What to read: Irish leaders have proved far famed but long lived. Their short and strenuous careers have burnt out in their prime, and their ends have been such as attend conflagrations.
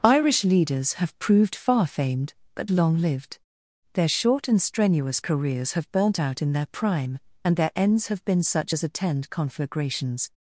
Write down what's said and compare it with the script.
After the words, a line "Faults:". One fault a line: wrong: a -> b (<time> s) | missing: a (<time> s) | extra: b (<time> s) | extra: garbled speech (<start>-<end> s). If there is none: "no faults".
Irish leaders have proved far famed but long lived. Their short and strenuous careers have burnt out in their prime, and their ends have been such as attend conflagrations.
Faults:
no faults